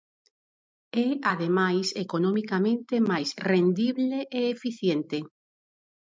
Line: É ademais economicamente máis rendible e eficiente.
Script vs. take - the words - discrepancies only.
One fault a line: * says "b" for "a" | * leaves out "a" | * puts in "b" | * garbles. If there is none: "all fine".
all fine